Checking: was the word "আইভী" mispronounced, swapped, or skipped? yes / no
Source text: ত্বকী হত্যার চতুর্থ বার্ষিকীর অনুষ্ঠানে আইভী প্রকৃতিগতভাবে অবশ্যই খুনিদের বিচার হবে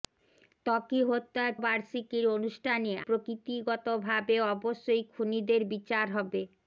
yes